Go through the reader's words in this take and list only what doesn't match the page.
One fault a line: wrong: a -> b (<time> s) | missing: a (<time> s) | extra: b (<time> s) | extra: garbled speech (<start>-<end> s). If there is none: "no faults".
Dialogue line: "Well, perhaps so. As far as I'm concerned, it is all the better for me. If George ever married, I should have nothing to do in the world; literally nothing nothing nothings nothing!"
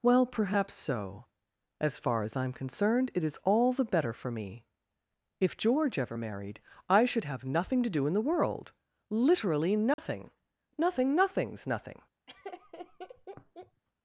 no faults